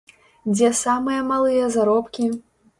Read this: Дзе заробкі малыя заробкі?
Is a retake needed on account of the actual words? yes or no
yes